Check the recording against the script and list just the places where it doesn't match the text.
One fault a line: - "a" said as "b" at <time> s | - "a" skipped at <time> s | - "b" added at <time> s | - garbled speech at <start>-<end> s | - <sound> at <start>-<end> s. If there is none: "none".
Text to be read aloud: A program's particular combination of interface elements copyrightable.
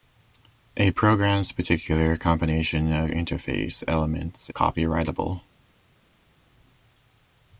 none